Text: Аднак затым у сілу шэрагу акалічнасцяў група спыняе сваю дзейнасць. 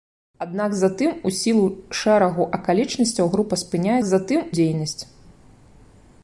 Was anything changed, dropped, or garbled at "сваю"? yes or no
yes